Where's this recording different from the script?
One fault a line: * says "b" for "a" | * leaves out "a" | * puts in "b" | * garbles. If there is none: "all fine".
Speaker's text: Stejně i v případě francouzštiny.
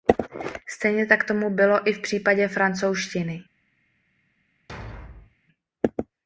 * puts in "tak tomu bylo"